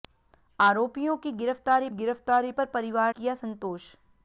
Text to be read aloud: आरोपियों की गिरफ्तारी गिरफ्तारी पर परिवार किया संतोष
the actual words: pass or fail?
pass